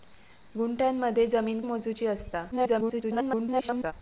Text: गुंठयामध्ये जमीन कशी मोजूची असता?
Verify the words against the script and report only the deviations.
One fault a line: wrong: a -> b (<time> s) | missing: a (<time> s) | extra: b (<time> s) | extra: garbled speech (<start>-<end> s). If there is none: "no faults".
missing: कशी (1.6 s)
extra: garbled speech (2.5-3.9 s)